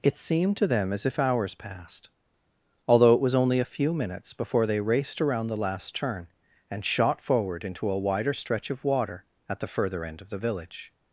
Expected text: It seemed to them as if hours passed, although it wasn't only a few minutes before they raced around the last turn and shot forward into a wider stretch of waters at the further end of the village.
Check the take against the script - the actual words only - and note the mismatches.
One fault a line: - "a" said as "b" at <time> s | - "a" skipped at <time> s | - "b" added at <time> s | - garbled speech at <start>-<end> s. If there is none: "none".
- "wasn't" said as "was" at 3.2 s
- "waters" said as "water" at 8.8 s